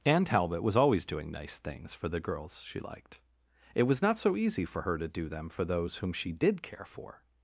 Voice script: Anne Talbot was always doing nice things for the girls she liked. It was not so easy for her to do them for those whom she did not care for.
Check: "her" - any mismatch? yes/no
no